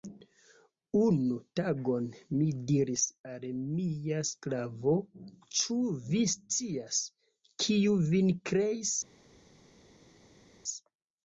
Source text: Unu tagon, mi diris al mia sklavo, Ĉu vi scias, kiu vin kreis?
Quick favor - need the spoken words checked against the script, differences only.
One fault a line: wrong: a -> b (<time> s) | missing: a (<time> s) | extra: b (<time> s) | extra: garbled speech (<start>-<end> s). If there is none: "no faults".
no faults